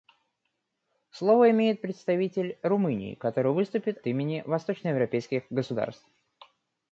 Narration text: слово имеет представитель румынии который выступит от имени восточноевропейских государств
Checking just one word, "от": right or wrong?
wrong